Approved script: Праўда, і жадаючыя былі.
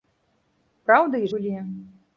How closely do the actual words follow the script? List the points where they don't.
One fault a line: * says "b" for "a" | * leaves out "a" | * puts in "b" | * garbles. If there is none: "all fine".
* leaves out "жадаючыя"